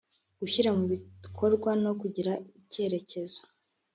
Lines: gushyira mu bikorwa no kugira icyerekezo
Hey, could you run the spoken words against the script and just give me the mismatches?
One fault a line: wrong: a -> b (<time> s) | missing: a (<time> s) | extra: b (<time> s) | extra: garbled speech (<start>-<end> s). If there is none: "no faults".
no faults